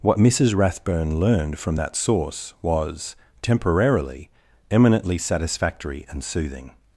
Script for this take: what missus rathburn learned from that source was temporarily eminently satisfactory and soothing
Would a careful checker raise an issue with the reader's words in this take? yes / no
no